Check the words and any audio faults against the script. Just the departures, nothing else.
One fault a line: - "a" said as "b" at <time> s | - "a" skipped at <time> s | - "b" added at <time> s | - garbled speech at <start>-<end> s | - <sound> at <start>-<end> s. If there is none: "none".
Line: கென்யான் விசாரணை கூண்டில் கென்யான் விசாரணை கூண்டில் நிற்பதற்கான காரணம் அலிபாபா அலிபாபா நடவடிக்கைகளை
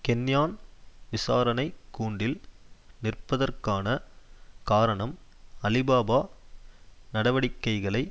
- "கென்யான் விசாரணை கூண்டில்" skipped at 2.4 s
- "அலிபாபா" skipped at 6.2 s